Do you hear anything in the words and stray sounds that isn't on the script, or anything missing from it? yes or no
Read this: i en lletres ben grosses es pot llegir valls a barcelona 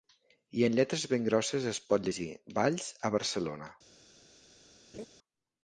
yes